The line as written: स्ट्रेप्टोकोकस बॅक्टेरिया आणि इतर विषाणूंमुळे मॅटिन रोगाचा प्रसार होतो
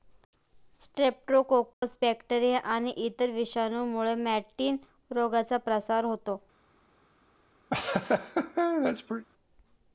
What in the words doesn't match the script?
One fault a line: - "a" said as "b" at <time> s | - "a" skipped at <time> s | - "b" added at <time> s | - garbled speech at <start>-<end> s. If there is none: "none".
none